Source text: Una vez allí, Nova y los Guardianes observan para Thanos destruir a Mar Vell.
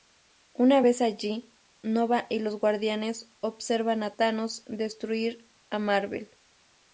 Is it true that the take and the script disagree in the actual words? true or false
true